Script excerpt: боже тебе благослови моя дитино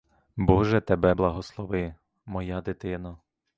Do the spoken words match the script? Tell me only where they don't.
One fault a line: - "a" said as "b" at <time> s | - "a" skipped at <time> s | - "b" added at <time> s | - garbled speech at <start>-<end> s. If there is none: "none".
none